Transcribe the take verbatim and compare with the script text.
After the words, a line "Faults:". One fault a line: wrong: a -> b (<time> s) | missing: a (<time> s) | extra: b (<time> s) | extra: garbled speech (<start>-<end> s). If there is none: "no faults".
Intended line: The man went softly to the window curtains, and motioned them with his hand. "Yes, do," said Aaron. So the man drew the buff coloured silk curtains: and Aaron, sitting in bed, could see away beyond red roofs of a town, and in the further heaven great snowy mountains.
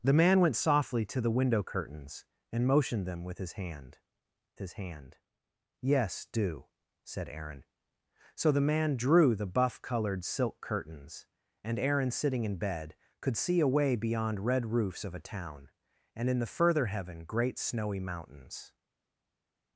The man went softly to the window curtains, and motioned them with his hand his hand. "Yes, do," said Aaron. So the man drew the buff coloured silk curtains: and Aaron, sitting in bed, could see away beyond red roofs of a town, and in the further heaven great snowy mountains.
Faults:
extra: his hand (4.6 s)